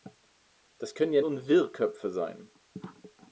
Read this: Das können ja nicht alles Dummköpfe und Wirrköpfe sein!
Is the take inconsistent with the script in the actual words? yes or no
yes